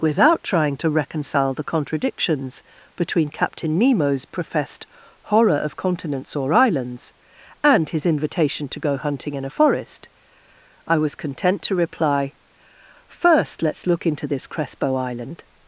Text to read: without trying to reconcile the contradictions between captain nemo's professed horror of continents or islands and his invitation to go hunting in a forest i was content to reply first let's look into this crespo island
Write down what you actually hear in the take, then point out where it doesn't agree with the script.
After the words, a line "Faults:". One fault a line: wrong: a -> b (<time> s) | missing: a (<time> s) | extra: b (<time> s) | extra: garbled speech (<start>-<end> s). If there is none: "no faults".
without trying to reconcile the contradictions between captain nemo's professed horror of continents or islands and his invitation to go hunting in a forest i was content to reply first let's look into this crespo island
Faults:
no faults